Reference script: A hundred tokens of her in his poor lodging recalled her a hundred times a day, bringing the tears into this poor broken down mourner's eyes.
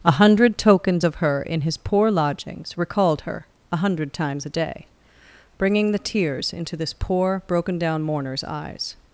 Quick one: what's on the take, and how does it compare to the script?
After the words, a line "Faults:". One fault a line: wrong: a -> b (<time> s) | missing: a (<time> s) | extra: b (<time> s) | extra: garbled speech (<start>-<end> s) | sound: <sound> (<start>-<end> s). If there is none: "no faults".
A hundred tokens of her in his poor lodgings recalled her a hundred times a day, bringing the tears into this poor broken down mourner's eyes.
Faults:
wrong: lodging -> lodgings (2.1 s)